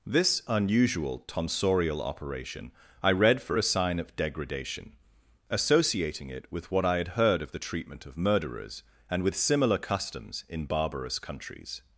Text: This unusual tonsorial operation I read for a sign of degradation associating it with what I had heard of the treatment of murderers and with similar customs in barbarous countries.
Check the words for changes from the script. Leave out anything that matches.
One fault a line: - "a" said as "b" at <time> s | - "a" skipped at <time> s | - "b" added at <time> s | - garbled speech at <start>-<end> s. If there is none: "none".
none